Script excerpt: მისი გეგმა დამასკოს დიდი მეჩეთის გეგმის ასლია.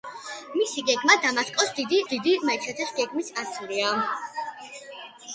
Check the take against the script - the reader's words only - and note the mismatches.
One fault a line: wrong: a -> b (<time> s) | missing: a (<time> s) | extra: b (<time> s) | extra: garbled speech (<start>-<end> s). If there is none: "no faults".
extra: დიდი (2.1 s)